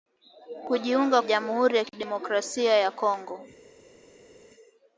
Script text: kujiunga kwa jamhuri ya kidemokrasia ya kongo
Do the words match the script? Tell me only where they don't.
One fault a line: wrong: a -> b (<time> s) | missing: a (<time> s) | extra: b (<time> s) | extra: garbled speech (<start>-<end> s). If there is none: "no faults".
missing: kwa (1.2 s)